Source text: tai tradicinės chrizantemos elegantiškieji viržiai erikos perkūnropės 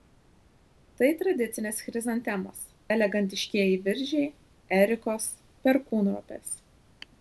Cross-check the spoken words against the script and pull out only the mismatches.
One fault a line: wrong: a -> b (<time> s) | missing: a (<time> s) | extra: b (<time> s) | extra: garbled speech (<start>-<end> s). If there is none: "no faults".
no faults